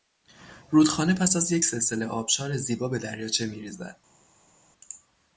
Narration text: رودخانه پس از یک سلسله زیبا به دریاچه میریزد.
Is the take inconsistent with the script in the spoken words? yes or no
yes